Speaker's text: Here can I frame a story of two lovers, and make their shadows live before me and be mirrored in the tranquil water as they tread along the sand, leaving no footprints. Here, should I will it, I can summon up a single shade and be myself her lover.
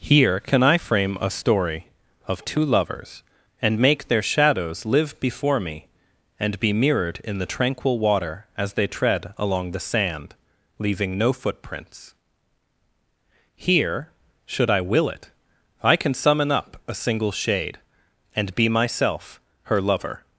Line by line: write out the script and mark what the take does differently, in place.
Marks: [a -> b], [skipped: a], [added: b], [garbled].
Here can I frame a story of two lovers, and make their shadows live before me and be mirrored in the tranquil water as they tread along the sand, leaving no footprints. Here, should I will it, I can summon up a single shade and be myself her lover.